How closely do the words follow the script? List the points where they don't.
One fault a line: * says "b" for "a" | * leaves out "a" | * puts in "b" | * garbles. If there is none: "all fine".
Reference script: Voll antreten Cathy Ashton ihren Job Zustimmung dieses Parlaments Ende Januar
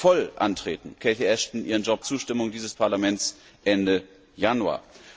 all fine